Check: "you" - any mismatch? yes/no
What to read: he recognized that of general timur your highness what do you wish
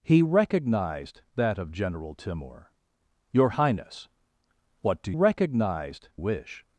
yes